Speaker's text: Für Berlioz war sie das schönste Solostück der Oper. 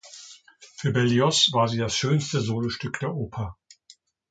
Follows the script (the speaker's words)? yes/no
yes